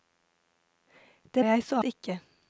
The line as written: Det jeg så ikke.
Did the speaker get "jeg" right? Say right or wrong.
right